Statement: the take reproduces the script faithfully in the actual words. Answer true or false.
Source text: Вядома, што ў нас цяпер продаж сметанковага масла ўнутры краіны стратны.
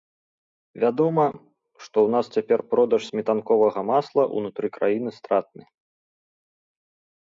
true